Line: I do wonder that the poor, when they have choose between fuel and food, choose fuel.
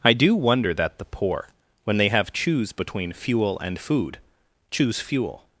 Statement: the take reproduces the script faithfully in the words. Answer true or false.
true